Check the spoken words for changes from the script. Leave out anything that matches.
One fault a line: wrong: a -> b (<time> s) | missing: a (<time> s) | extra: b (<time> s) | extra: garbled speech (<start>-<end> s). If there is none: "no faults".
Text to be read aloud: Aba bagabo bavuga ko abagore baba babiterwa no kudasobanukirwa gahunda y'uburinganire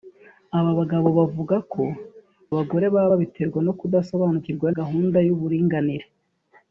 no faults